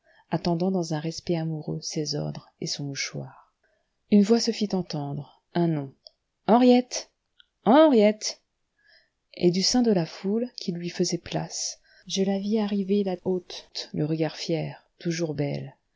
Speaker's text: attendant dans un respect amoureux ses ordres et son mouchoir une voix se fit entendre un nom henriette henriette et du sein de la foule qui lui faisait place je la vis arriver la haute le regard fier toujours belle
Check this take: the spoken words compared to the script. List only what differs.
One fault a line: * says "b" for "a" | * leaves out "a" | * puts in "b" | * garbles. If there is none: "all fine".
all fine